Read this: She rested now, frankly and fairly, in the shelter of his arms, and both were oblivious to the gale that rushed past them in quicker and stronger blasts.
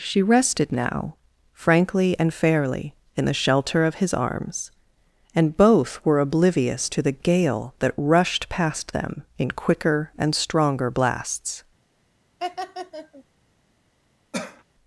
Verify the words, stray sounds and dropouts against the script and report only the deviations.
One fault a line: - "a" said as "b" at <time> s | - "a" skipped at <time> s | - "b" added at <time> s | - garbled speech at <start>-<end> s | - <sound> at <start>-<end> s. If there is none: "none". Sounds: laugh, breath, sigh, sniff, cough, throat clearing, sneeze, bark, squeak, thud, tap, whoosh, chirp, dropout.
- laugh at 12.4-13.2 s
- cough at 14.3-14.6 s